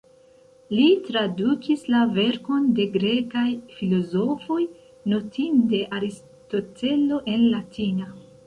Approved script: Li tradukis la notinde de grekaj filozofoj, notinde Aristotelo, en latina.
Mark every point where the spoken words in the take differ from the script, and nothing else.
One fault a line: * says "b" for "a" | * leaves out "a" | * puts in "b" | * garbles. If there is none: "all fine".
* says "verkon" for "notinde"